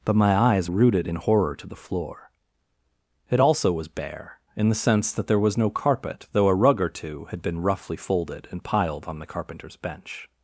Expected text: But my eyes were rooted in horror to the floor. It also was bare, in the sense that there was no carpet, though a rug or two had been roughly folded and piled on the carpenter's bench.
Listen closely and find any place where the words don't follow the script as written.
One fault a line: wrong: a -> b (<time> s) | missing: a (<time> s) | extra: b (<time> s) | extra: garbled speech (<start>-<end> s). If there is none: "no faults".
missing: were (0.7 s)